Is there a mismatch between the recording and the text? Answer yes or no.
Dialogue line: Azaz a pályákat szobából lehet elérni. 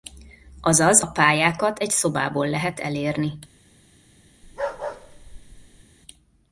yes